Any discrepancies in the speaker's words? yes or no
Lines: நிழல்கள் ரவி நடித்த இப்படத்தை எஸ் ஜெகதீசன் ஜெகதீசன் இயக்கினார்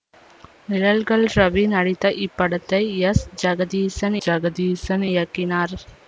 no